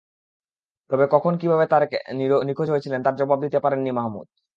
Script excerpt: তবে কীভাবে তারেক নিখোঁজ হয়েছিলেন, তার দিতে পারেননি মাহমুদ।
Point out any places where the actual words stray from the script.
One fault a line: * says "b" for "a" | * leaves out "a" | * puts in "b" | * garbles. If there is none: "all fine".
* puts in "কখন"
* puts in "জবাব"